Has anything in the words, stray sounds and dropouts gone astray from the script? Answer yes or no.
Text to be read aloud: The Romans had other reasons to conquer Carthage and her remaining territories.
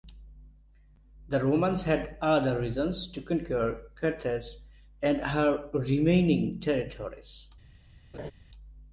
yes